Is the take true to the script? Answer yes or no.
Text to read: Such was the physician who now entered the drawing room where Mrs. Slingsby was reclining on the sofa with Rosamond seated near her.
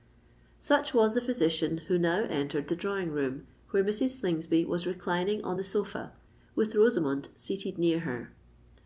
yes